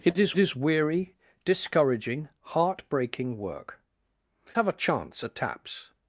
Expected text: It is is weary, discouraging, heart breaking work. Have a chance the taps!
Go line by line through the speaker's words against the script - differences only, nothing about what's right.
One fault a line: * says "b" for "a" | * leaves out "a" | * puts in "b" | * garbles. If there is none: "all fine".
all fine